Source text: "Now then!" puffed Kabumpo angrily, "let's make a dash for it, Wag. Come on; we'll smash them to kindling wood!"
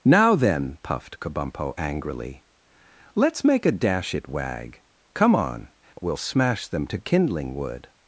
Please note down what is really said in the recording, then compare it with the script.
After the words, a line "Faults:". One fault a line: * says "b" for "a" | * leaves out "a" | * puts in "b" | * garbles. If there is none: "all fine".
"Now then!" puffed Kabumpo angrily, "let's make a dash it, Wag. Come on; we'll smash them to kindling wood!"
Faults:
* leaves out "for"